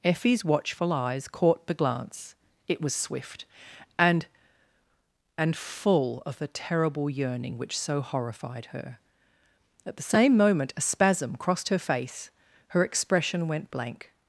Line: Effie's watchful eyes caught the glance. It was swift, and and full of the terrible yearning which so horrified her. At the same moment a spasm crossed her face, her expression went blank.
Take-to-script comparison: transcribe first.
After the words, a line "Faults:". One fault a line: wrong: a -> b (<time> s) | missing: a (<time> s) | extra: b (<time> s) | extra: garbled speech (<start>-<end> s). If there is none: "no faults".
Effie's watchful eyes caught the glance. It was swift, and and full of the terrible yearning which so horrified her. At the same moment a spasm crossed her face, her expression went blank.
Faults:
no faults